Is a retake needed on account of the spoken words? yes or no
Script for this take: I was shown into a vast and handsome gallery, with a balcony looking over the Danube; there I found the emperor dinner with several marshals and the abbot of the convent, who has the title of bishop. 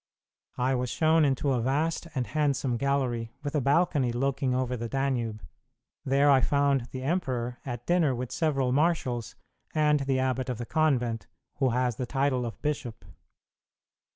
yes